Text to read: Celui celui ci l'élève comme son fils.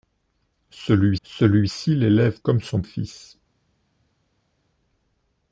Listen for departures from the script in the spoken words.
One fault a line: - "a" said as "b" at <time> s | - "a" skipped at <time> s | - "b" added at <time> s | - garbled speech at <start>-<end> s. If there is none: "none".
none